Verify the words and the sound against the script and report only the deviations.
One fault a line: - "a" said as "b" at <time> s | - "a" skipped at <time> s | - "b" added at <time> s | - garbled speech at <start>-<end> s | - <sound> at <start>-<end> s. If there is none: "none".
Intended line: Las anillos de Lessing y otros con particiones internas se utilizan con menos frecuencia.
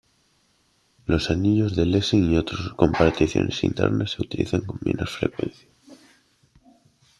- "Las" said as "Los" at 1.1 s